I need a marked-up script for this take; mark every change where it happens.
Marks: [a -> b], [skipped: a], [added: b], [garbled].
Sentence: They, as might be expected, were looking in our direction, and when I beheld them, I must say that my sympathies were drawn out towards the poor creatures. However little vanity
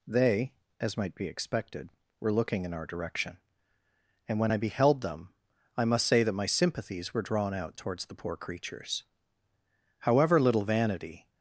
They, as might be expected, were looking in our direction, and when I beheld them, I must say that my sympathies were drawn out towards the poor creatures. However little vanity